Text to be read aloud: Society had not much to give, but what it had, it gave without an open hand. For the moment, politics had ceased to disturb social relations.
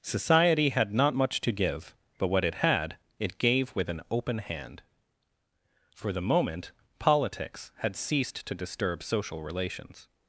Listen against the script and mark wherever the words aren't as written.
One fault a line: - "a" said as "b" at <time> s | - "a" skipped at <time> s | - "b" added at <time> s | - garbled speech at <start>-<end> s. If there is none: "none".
- "without" said as "with" at 3.8 s